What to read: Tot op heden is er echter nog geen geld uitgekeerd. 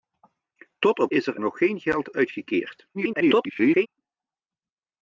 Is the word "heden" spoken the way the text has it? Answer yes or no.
no